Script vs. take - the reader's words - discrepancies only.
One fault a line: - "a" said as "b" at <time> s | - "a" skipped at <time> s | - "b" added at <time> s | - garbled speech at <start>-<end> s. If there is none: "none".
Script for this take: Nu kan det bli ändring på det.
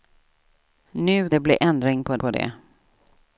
- "kan" skipped at 1.3 s
- "på" added at 2.2 s